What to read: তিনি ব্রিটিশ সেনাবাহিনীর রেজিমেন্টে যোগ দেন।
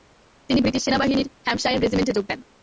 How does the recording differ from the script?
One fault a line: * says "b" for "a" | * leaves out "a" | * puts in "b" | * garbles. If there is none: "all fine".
* puts in "হ্যাম্পশায়ার"